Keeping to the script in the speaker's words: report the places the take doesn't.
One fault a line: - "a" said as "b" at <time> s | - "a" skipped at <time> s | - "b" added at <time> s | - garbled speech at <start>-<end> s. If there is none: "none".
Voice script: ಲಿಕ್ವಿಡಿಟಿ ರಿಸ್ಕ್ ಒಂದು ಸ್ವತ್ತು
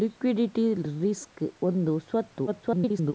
- garbled speech at 2.5-3.1 s